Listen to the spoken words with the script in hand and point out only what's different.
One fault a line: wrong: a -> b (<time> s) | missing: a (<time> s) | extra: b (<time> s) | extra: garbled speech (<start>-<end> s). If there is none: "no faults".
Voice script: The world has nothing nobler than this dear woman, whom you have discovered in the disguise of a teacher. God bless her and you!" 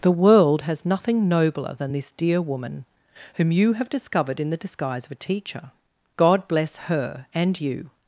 no faults